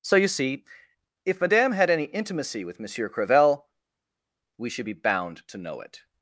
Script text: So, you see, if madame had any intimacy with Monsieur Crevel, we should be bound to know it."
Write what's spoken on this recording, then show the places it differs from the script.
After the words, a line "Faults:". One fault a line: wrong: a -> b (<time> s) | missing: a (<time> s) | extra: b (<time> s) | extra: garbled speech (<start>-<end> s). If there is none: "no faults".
So, you see, if madame had any intimacy with Monsieur Crevel, we should be bound to know it."
Faults:
no faults